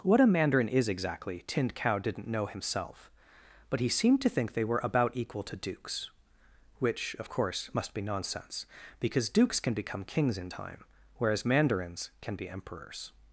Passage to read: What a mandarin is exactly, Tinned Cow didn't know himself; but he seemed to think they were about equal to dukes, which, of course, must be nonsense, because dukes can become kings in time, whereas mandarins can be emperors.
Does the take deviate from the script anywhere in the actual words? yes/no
no